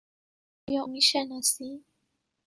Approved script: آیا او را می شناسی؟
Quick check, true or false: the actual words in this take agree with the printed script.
false